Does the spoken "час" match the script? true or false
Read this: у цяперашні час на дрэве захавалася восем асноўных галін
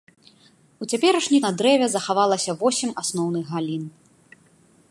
false